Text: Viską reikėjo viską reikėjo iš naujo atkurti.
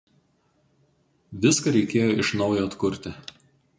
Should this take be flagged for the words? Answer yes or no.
yes